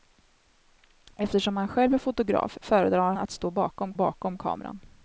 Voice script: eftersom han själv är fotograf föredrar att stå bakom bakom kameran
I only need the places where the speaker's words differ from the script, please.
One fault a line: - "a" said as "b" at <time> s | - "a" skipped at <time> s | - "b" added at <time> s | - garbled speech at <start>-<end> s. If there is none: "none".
none